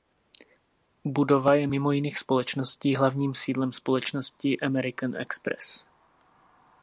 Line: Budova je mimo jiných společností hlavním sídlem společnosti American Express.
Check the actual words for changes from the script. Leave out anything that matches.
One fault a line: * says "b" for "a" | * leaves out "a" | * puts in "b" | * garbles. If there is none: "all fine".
all fine